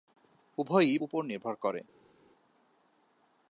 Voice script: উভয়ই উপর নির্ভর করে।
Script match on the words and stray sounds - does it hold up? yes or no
yes